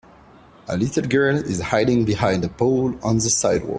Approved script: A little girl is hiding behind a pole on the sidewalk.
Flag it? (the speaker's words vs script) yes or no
no